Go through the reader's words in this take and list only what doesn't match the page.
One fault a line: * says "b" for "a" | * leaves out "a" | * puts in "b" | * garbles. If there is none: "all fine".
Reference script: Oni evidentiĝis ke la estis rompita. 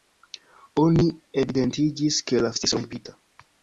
all fine